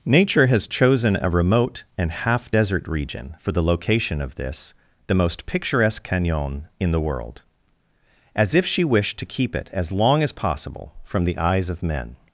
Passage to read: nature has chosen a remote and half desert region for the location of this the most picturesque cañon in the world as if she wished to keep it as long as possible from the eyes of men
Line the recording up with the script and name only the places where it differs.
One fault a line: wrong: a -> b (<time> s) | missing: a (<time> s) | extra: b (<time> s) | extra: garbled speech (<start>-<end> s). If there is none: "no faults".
no faults